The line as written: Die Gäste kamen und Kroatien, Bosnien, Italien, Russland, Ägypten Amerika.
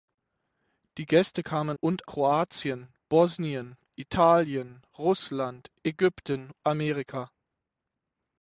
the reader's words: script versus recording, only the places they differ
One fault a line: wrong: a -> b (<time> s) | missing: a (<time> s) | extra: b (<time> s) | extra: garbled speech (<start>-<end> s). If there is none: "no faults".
no faults